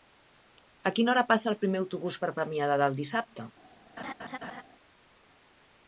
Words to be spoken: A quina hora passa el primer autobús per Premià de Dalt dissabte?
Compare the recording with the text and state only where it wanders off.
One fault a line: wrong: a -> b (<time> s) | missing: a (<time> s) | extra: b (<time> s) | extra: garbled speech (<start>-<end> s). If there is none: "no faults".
no faults